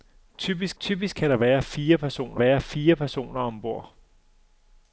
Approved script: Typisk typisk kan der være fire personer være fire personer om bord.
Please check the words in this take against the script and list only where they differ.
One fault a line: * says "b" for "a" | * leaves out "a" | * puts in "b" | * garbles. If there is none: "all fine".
all fine